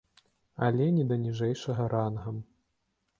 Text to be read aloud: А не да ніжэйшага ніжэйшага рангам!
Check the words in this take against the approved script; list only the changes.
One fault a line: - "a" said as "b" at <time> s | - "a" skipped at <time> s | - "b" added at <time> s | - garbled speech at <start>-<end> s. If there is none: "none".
- "А" said as "Але" at 0.7 s
- "ніжэйшага" skipped at 1.9 s